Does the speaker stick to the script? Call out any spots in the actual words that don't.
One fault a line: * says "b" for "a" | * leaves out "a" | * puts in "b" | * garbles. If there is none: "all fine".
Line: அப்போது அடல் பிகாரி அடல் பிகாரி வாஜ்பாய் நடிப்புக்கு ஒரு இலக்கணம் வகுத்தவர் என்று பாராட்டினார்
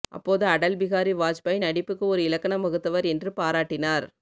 * leaves out "அடல் பிகாரி"